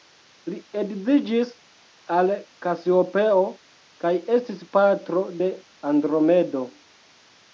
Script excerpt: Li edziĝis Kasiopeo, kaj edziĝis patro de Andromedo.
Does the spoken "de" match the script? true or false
true